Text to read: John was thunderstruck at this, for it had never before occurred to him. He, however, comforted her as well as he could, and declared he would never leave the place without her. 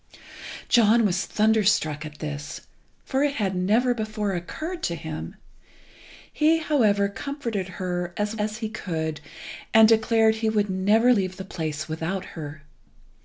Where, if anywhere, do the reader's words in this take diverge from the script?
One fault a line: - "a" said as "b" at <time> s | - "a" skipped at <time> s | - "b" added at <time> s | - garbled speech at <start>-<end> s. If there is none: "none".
- "well" skipped at 8.3 s